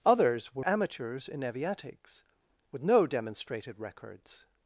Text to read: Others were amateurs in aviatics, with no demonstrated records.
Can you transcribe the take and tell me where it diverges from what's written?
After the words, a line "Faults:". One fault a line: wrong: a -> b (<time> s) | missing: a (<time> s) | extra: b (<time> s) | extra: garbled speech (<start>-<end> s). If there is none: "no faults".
Others were amateurs in aviatics, with no demonstrated records.
Faults:
no faults